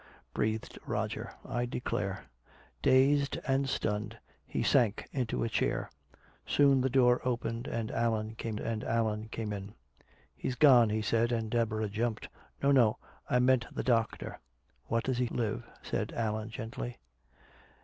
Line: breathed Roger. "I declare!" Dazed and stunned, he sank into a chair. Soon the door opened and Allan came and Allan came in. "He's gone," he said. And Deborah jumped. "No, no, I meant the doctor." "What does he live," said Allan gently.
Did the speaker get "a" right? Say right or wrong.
right